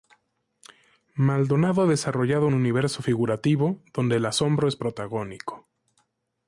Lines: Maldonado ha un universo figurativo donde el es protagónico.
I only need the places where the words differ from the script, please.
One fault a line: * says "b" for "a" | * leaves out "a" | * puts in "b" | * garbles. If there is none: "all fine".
* puts in "desarrollado"
* puts in "asombro"